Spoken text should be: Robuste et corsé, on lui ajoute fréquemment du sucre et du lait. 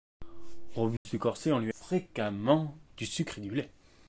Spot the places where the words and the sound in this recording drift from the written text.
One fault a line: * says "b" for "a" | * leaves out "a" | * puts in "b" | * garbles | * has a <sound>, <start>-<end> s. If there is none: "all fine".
* has a dropout, 1.0-1.1 s
* leaves out "ajoute"